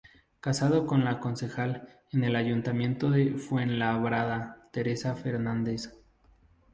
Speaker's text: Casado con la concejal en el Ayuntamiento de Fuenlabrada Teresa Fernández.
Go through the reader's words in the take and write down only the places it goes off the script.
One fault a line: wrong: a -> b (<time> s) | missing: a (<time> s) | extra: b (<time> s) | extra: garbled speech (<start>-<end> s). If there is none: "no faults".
no faults